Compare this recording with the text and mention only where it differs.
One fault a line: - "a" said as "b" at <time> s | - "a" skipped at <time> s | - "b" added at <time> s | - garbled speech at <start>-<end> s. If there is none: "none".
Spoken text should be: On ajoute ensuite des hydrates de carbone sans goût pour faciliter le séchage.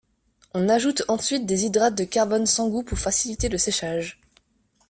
none